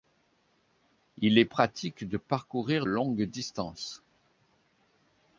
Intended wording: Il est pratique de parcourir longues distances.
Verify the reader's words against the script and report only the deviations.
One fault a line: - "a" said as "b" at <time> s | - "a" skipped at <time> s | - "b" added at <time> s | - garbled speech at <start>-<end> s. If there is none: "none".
none